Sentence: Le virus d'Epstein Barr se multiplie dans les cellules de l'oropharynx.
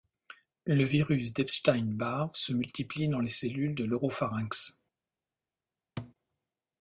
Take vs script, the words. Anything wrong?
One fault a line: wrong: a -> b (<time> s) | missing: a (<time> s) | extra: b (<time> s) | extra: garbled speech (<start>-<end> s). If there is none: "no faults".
no faults